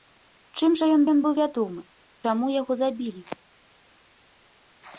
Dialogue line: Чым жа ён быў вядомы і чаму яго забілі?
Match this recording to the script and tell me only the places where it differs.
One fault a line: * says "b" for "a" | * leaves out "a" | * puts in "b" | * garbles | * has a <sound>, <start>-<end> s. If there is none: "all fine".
* puts in "ён"
* leaves out "і"